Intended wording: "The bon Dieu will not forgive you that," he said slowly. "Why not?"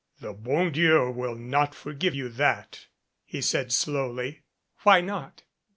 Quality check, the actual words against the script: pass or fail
pass